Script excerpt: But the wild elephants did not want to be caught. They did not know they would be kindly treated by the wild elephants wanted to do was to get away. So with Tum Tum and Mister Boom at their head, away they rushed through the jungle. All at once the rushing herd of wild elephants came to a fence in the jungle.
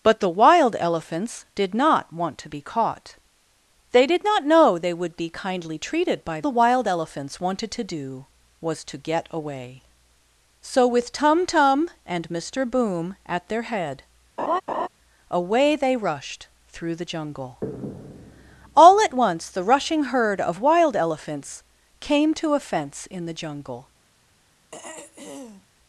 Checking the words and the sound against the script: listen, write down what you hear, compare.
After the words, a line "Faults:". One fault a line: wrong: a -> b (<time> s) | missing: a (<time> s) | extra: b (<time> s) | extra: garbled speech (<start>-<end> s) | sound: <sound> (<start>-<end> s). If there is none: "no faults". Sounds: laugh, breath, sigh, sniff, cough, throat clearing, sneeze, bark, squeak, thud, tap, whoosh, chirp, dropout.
But the wild elephants did not want to be caught. They did not know they would be kindly treated by the wild elephants wanted to do was to get away. So with Tum Tum and Mister Boom at their head, away they rushed through the jungle. All at once the rushing herd of wild elephants came to a fence in the jungle.
Faults:
sound: laugh (14.4-14.9 s)
sound: throat clearing (24.7-25.7 s)